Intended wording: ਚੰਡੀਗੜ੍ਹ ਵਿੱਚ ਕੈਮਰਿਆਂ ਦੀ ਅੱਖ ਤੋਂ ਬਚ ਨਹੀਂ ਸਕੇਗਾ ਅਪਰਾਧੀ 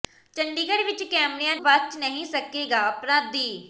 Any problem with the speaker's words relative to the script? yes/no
yes